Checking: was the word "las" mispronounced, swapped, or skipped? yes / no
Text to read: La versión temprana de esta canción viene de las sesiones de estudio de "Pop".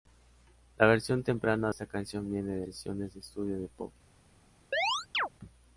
yes